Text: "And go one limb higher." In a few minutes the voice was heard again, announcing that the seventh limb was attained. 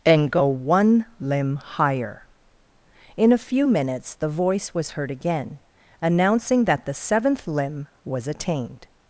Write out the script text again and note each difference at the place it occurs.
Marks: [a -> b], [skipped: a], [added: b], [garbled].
"And go one limb higher." In a few minutes the voice was heard again, announcing that the seventh limb was attained.